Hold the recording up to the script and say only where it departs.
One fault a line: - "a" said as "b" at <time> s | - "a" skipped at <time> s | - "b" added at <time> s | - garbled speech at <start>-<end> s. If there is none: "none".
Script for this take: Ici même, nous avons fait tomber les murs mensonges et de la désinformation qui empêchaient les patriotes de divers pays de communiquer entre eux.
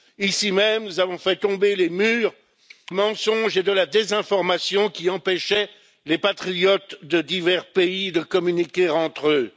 none